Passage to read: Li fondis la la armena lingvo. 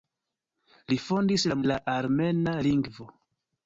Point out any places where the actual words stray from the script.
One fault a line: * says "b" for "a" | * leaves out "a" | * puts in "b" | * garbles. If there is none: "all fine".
all fine